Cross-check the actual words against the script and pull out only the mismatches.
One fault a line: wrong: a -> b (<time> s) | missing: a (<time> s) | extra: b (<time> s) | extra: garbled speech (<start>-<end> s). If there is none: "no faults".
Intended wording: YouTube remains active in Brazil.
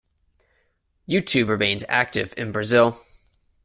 no faults